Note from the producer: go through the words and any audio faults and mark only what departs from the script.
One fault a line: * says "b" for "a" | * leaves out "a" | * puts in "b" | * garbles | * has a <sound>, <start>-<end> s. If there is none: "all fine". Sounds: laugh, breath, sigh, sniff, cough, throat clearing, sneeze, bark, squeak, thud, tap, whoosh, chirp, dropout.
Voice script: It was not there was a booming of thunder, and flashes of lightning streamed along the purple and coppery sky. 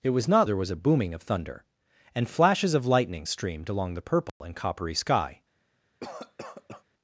* has a dropout, 4.3-4.4 s
* has a cough, 6.0-6.8 s